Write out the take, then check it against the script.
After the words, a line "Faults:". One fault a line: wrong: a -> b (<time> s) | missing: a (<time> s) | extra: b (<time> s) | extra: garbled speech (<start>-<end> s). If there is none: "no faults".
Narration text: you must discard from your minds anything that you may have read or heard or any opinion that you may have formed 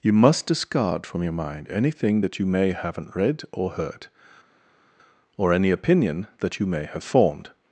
you must discard from your mind anything that you may haven't read or heard or any opinion that you may have formed
Faults:
wrong: minds -> mind (1.3 s)
wrong: have -> haven't (2.7 s)